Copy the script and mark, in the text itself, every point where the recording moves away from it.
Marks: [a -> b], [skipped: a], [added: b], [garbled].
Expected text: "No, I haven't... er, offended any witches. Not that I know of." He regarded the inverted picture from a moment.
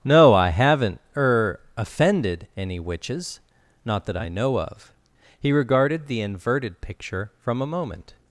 "No, I haven't... er, offended any witches. Not that I know of." He regarded the inverted picture from a moment.